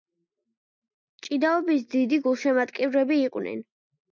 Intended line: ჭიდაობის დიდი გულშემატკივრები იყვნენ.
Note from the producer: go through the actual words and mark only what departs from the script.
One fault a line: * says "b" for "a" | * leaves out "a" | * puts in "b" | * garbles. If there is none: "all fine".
all fine